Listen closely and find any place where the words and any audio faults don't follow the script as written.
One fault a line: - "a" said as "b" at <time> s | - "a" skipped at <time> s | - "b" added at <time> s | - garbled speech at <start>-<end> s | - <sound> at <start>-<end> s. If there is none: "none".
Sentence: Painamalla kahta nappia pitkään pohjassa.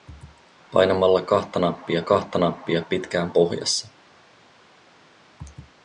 - "kahta nappia" added at 2.0 s